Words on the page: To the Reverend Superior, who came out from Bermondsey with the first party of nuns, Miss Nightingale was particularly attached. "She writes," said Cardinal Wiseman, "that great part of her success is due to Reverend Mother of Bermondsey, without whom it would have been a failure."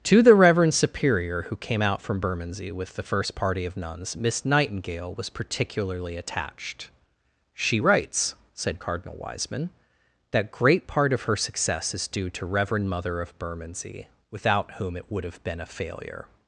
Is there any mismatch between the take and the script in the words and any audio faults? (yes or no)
no